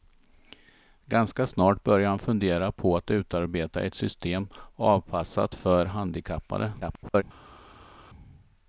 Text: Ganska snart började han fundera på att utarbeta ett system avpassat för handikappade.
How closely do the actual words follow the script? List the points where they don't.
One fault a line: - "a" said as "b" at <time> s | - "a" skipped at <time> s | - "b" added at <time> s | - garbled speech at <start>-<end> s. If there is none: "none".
- garbled speech at 6.8-7.2 s